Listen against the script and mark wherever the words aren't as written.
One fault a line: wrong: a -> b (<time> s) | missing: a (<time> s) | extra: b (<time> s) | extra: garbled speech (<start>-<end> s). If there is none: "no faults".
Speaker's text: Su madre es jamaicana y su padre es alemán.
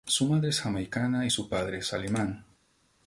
no faults